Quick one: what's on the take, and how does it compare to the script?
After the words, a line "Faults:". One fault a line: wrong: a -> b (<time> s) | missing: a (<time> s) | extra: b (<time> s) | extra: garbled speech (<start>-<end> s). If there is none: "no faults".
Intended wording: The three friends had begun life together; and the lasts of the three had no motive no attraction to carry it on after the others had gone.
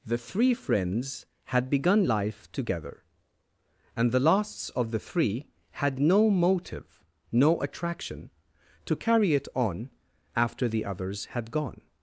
The three friends had begun life together; and the lasts of the three had no motive no attraction to carry it on after the others had gone.
Faults:
no faults